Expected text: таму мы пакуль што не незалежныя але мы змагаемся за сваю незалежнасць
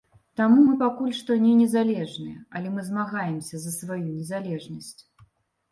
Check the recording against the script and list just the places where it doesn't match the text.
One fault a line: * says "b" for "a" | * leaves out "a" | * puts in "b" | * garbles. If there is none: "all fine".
all fine